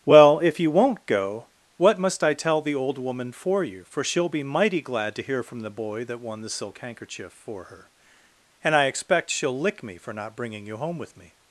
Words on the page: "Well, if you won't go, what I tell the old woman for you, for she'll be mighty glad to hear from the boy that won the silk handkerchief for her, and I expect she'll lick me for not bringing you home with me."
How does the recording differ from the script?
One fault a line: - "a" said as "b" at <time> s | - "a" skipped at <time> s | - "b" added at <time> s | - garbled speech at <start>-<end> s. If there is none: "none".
- "must" added at 2.0 s